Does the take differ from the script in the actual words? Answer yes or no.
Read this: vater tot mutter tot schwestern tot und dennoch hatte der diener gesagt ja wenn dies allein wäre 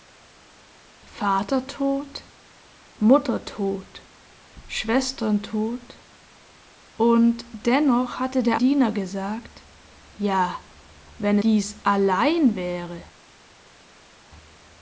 no